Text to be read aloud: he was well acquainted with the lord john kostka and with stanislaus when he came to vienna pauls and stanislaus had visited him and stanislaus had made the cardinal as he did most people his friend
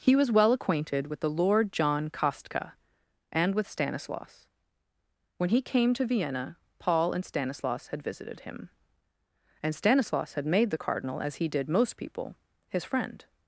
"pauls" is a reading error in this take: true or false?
true